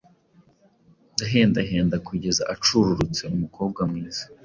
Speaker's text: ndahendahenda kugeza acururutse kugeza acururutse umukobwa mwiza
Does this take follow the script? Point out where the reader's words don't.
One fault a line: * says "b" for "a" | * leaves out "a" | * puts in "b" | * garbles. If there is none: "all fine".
* leaves out "kugeza acururutse"